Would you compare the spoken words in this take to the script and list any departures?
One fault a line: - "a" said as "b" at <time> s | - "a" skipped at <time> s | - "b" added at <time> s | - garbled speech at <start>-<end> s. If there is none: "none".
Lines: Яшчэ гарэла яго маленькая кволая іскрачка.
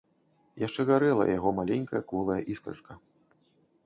none